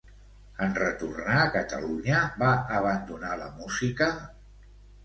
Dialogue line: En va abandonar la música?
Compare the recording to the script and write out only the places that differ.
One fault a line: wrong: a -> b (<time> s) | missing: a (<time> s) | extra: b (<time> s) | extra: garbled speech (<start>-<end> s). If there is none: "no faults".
extra: retornar a Catalunya (0.8 s)